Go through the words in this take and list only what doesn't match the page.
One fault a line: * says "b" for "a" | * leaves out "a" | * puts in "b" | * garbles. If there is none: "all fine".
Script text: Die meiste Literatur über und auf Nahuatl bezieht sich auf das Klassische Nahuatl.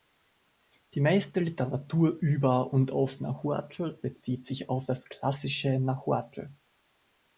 all fine